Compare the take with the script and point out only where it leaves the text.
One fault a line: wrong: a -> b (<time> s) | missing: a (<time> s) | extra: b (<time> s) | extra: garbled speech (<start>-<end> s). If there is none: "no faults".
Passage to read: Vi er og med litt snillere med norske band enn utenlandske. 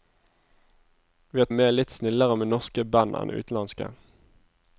no faults